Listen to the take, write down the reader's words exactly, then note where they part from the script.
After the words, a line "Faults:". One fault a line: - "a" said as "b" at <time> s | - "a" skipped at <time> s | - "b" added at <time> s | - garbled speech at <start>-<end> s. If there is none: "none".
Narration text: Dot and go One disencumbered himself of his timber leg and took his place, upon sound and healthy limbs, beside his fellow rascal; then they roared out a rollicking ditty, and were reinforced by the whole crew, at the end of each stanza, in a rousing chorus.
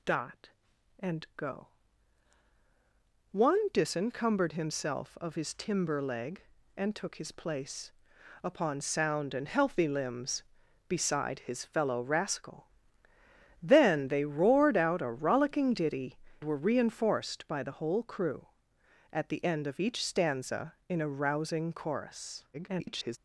Dot and go One disencumbered himself of his timber leg and took his place, upon sound and healthy limbs, beside his fellow rascal; then they roared out a rollicking ditty, were reinforced by the whole crew, at the end of each stanza, in a rousing chorus. [garbled]
Faults:
- "and" skipped at 16.2 s
- garbled speech at 22.5-23.2 s